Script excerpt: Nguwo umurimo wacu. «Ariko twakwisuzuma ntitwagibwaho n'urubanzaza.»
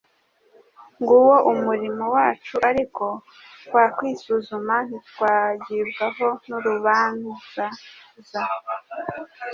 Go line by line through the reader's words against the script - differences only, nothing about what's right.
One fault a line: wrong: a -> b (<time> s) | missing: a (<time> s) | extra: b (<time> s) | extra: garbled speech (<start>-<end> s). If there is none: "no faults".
no faults